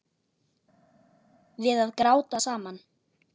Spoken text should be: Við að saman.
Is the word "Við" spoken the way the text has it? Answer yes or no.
yes